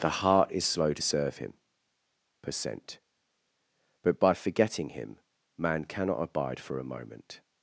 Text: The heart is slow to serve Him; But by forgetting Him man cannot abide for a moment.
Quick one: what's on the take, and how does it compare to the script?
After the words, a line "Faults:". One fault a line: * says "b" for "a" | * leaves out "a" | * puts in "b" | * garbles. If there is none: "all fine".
The heart is slow to serve Him; percent But by forgetting Him man cannot abide for a moment.
Faults:
* puts in "percent"